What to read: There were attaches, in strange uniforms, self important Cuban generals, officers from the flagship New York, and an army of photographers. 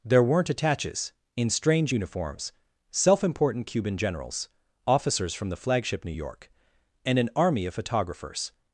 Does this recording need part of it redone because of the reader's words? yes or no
yes